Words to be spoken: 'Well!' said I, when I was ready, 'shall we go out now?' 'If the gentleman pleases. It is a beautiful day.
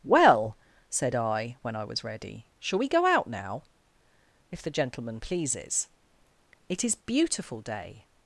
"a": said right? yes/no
no